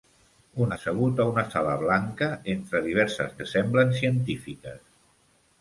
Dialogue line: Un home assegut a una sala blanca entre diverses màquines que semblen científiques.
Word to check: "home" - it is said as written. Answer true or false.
false